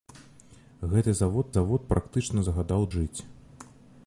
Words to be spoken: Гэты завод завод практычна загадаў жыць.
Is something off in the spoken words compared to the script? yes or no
no